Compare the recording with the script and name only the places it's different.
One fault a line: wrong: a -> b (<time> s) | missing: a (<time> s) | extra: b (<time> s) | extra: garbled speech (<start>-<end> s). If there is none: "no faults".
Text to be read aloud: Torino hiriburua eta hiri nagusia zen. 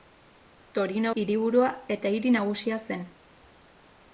no faults